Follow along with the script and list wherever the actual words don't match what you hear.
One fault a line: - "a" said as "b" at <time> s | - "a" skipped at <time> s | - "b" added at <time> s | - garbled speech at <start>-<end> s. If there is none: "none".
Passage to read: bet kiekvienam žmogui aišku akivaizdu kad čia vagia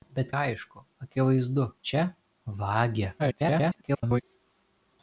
- "kiekvienam žmogui" skipped at 0.3 s
- "kad" skipped at 1.7 s
- garbled speech at 3.2-4.2 s